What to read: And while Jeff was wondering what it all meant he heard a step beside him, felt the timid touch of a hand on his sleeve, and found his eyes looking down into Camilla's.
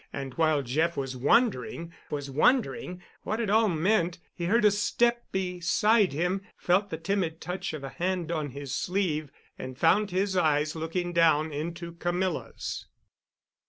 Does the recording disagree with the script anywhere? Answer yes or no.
yes